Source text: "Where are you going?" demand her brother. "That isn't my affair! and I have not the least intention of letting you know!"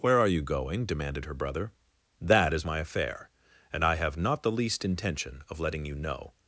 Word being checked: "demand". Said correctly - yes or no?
no